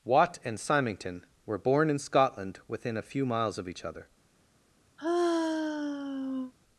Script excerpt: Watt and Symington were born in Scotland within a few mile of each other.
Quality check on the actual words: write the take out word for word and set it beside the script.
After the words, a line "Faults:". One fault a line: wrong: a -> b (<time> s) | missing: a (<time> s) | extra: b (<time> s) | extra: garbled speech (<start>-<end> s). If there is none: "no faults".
Watt and Symington were born in Scotland within a few miles of each other.
Faults:
wrong: mile -> miles (3.2 s)